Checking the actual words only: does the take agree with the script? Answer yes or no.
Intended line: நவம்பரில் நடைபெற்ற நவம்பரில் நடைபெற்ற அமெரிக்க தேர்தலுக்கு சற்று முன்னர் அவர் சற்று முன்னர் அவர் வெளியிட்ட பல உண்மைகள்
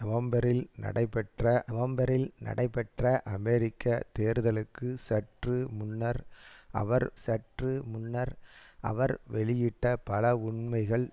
yes